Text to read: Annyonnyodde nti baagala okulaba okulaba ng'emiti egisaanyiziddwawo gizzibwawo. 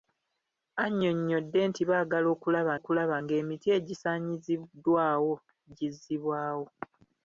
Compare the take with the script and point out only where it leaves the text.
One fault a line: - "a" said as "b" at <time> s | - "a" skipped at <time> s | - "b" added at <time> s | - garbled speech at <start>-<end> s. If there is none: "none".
none